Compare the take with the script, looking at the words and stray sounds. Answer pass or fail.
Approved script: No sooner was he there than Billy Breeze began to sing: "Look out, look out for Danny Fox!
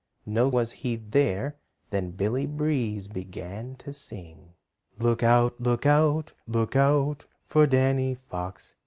fail